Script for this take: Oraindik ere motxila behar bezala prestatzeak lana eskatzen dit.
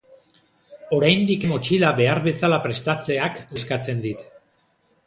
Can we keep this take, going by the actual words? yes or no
no